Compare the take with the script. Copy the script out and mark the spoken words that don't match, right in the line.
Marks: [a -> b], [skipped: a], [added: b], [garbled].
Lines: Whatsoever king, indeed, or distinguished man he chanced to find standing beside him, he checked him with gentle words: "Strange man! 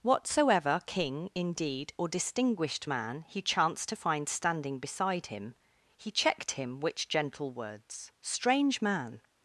Whatsoever king, indeed, or distinguished man he chanced to find standing beside him, he checked him [with -> which] gentle words: "Strange man!